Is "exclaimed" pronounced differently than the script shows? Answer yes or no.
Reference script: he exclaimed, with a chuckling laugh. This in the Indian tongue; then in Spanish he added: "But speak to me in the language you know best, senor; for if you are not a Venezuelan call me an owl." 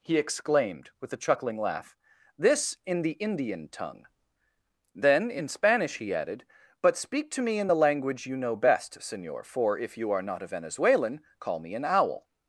no